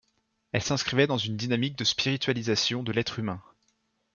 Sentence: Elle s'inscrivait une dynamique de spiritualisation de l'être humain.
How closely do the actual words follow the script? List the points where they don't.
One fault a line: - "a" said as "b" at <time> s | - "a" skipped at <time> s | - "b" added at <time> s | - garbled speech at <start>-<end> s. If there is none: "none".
- "dans" added at 1.1 s